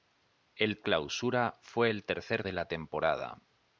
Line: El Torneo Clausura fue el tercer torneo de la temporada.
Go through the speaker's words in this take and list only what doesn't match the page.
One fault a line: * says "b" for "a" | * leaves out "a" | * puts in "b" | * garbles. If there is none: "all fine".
* leaves out "Torneo"
* leaves out "torneo"